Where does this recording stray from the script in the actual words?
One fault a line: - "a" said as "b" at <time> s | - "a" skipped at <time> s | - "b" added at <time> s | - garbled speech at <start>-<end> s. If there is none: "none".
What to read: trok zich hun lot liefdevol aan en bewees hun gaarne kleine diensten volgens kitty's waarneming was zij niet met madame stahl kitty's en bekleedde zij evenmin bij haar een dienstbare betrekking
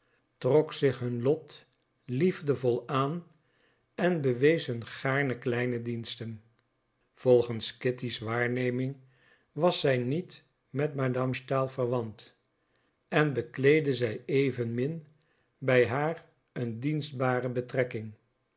- "kitty's" said as "verwant" at 11.7 s